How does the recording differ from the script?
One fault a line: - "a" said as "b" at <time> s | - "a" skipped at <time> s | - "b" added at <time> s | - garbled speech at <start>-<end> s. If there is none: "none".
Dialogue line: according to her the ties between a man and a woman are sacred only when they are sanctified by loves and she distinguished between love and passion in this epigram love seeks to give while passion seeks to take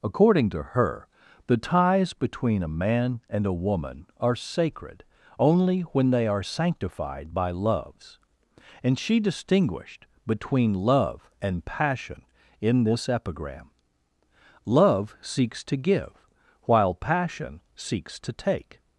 none